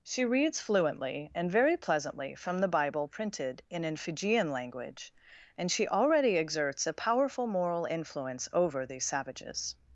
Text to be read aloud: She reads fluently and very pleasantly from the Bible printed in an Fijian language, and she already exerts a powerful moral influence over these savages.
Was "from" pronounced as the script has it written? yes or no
yes